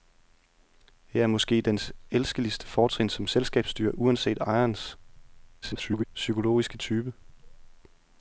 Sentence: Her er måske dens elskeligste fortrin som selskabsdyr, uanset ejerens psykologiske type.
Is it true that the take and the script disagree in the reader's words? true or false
true